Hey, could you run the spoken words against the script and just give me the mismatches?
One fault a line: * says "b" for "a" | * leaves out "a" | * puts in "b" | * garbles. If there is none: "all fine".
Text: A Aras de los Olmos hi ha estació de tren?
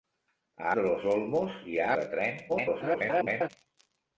* leaves out "Aras"
* leaves out "estació"
* garbles